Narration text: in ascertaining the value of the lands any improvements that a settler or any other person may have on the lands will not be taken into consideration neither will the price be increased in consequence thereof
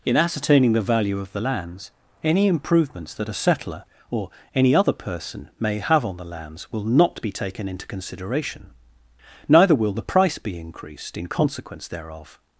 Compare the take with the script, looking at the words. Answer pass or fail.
pass